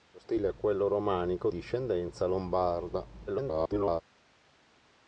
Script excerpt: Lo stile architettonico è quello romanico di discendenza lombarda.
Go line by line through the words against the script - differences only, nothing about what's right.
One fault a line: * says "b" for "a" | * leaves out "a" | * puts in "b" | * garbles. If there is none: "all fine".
* leaves out "architettonico"
* leaves out "di"
* garbles